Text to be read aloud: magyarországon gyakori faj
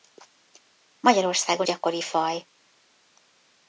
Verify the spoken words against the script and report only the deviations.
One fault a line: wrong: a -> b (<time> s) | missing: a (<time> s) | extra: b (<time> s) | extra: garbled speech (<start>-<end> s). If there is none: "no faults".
no faults